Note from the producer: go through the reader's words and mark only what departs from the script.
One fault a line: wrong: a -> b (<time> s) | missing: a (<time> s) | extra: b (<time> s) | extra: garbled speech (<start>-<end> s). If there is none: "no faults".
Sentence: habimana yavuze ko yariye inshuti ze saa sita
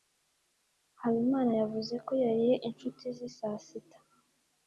no faults